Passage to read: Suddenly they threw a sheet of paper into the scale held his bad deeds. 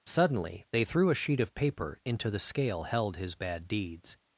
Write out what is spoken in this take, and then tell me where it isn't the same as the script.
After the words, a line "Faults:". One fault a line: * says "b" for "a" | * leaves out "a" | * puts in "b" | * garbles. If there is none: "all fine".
Suddenly they threw a sheet of paper into the scale held his bad deeds.
Faults:
all fine